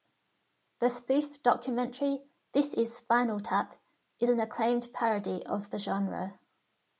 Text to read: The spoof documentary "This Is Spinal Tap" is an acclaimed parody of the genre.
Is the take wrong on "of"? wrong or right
right